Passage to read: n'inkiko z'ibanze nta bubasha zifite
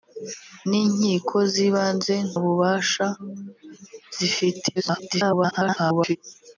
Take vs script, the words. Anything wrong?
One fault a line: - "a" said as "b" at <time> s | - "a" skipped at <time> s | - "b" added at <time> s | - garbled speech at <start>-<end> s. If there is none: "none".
- "nta" skipped at 2.1 s
- garbled speech at 4.8-6.2 s